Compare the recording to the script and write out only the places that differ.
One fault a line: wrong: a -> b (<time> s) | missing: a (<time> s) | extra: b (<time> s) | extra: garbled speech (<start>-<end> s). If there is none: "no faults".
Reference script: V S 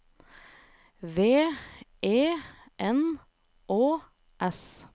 extra: E N Å (2.0 s)